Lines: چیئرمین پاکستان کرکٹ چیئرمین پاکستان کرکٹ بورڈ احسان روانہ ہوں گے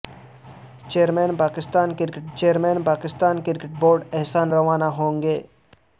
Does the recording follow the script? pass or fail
pass